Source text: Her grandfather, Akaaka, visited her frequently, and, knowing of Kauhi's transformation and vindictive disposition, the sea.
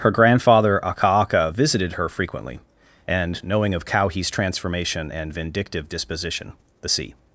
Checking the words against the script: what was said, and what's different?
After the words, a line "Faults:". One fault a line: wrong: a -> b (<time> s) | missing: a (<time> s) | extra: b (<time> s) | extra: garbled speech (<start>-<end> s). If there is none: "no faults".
Her grandfather, Akaaka, visited her frequently, and, knowing of Kauhi's transformation and vindictive disposition, the sea.
Faults:
no faults